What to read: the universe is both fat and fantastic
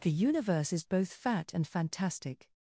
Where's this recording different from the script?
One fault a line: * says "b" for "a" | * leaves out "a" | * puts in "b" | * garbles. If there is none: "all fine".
all fine